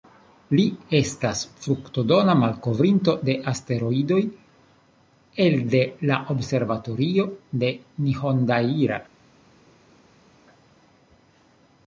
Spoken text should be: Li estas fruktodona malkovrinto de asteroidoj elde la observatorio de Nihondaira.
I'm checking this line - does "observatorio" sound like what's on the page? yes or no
yes